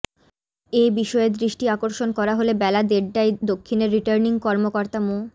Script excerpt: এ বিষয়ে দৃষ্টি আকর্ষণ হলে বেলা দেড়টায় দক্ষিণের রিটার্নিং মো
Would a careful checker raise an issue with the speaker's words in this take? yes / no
yes